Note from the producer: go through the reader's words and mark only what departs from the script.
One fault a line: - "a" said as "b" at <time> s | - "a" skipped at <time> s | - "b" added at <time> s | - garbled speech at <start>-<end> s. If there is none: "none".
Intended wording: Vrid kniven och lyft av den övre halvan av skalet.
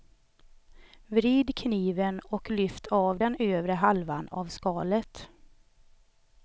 none